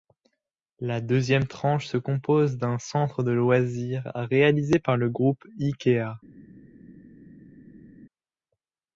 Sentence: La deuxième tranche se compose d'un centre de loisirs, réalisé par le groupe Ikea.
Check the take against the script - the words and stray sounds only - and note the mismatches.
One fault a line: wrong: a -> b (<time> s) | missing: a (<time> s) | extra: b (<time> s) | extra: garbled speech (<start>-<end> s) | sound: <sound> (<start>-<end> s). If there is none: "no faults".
no faults